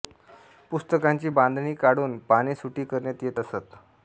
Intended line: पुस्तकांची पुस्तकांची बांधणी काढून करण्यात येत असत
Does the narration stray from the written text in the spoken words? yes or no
yes